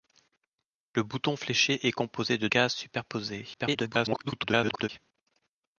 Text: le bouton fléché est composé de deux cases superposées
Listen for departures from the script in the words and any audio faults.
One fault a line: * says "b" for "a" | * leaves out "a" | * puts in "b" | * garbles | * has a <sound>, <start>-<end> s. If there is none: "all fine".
* leaves out "deux"
* garbles